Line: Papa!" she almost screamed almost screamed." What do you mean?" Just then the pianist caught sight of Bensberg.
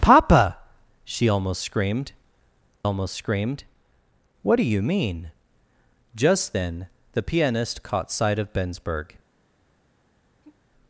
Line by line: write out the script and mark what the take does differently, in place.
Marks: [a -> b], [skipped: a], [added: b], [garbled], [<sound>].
Papa!" she almost screamed almost screamed." What do you mean?" Just then the pianist caught sight of Bensberg. [sigh]